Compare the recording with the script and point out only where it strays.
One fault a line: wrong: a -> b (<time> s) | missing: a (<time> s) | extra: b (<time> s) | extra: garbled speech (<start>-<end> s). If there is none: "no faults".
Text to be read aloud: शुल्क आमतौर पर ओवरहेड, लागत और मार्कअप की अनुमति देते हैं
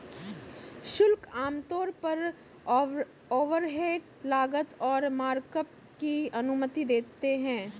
no faults